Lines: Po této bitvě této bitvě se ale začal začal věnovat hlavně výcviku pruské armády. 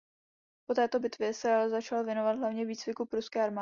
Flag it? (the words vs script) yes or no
yes